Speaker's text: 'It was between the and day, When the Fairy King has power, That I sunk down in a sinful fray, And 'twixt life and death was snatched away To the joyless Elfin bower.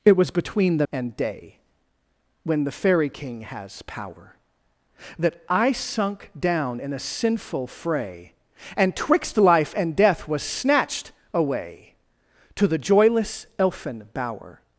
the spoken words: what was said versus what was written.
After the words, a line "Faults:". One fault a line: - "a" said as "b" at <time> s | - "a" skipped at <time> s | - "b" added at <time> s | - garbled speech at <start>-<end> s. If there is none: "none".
'It was between the and day, When the Fairy King has power, That I sunk down in a sinful fray, And 'twixt life and death was snatched away To the joyless Elfin bower.
Faults:
none